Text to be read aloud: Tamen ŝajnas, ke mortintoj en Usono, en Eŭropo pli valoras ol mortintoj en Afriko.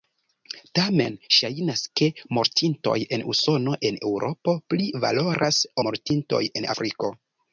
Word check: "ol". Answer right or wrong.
wrong